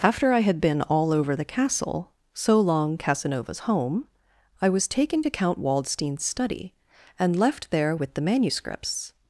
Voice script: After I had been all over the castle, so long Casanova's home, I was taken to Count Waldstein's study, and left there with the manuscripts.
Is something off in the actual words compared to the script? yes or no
no